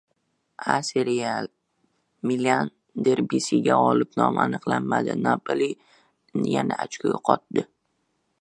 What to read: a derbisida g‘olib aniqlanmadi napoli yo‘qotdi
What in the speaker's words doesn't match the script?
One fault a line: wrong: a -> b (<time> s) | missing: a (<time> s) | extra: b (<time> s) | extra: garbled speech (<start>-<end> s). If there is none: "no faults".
extra: seriya milan (0.9 s)
extra: nomi (4.2 s)
extra: yana ochko (6.5 s)